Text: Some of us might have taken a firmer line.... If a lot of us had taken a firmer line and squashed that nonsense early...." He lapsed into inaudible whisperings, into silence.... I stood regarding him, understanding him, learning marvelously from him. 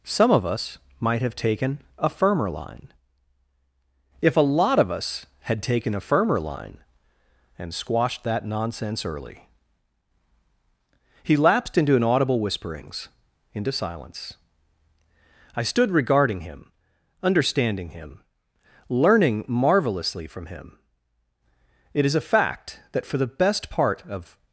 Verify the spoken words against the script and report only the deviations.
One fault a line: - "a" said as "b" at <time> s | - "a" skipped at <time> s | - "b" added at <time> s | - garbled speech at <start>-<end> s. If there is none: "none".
- "It is a fact that for the best part of" added at 21.9 s